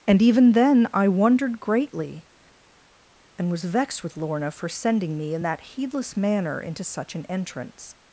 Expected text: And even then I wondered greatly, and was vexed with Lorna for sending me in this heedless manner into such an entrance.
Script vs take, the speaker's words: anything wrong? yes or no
yes